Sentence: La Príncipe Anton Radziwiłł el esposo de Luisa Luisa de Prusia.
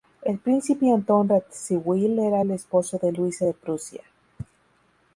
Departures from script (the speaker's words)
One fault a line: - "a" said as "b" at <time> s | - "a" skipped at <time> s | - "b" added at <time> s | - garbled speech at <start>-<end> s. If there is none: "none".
- "La" said as "El" at 0.2 s
- "era" added at 2.3 s
- "Luisa" skipped at 3.5 s